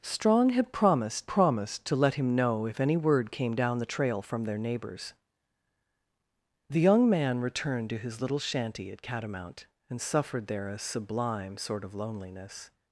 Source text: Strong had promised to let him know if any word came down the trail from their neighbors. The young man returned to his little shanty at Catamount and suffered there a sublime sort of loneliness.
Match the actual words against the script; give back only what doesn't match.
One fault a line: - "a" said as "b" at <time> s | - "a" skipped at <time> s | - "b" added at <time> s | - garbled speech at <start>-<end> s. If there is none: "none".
- "promised" added at 1.3 s